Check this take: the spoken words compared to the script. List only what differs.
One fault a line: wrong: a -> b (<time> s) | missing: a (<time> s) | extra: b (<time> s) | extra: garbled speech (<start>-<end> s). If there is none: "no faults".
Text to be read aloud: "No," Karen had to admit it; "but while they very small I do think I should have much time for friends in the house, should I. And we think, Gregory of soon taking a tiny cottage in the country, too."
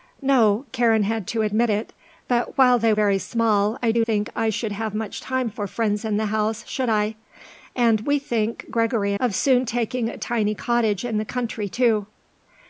no faults